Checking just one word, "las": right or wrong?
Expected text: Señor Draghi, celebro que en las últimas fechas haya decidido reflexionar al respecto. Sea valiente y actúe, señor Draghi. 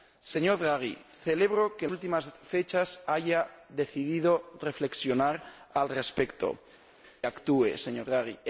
wrong